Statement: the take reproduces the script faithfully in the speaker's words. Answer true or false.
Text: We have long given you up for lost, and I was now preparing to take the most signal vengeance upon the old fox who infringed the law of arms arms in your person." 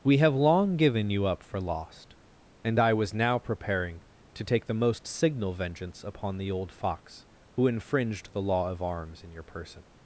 false